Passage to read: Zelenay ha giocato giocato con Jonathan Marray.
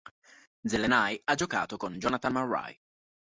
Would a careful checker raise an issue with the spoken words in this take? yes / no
yes